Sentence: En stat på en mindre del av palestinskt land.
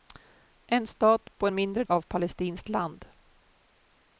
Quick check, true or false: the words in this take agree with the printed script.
false